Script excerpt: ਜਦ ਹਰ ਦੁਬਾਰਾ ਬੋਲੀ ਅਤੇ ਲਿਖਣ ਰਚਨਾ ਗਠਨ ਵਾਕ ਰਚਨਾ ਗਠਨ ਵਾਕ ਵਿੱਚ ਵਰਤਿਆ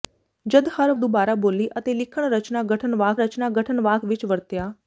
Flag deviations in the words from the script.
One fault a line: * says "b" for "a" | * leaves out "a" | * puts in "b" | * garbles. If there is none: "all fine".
all fine